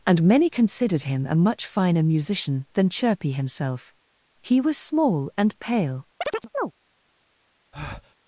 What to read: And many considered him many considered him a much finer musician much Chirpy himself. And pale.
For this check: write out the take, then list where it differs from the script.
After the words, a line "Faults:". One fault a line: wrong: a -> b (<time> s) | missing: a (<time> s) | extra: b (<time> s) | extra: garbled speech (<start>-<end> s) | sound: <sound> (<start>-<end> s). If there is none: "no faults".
And many considered him a much finer musician than Chirpy himself. He was small and pale.
Faults:
missing: many considered him (1.3 s)
wrong: much -> than (2.7 s)
extra: He was small (4.4 s)
sound: chirp (6.2-6.7 s)
sound: breath (7.7-8.2 s)